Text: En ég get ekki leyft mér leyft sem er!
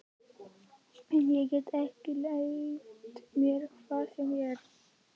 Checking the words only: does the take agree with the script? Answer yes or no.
no